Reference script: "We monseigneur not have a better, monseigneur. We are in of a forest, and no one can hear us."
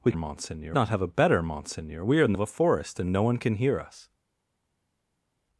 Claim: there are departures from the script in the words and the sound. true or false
false